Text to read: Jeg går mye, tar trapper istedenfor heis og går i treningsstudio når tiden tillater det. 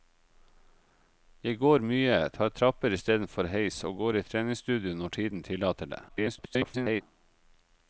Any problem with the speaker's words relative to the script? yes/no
yes